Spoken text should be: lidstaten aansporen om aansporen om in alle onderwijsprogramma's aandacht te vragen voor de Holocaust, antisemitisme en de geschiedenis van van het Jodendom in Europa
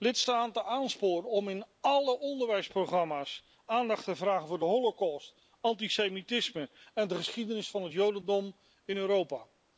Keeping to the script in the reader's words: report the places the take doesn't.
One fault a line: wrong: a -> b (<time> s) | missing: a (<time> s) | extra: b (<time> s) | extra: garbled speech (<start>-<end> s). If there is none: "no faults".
missing: aansporen om (1.5 s)
missing: van (7.8 s)